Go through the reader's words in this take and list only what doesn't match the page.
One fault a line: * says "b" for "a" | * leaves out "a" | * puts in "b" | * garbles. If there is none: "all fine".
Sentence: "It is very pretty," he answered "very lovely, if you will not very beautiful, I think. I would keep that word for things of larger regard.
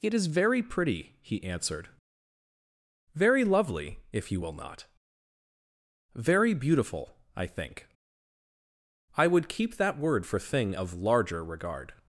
* says "thing" for "things"